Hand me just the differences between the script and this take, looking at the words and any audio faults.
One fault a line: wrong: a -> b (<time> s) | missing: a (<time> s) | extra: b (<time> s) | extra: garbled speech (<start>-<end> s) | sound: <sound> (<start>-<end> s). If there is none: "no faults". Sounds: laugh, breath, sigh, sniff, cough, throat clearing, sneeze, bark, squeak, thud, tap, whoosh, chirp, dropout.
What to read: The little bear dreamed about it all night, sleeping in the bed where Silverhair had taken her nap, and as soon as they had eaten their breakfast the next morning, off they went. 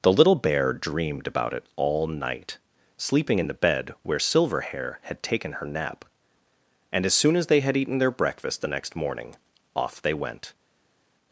no faults